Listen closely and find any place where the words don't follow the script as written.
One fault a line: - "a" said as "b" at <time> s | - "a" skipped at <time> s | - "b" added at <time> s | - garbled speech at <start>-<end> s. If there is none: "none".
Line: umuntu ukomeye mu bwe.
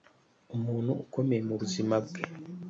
- "buzima" added at 1.6 s